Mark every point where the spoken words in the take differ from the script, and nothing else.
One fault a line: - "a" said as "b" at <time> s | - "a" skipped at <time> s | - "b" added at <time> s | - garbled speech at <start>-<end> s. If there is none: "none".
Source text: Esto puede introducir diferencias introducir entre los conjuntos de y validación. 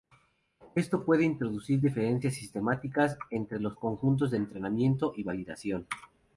- "introducir" said as "sistemáticas" at 2.4 s
- "entrenamiento" added at 4.4 s